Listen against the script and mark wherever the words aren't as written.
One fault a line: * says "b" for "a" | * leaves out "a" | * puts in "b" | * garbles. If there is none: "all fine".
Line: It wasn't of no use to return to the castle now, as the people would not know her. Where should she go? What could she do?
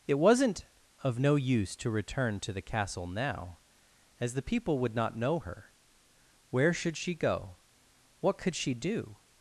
all fine